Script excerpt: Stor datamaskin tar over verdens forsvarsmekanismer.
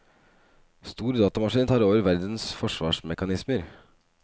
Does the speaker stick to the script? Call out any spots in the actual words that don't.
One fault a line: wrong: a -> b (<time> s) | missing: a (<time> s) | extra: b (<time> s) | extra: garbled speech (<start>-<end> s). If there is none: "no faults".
no faults